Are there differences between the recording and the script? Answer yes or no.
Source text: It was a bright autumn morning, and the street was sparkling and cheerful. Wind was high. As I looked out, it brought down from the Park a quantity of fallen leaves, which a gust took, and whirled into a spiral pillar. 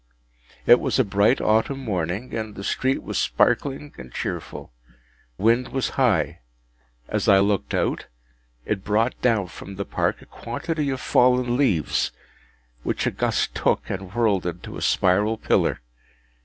no